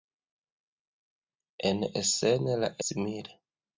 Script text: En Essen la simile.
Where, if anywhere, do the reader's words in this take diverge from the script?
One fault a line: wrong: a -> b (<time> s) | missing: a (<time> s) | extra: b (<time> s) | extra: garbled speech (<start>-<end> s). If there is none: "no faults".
no faults